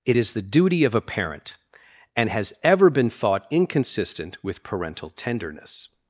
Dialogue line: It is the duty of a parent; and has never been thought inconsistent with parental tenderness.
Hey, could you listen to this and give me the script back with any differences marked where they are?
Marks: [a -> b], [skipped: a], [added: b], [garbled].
It is the duty of a parent; and has [never -> ever] been thought inconsistent with parental tenderness.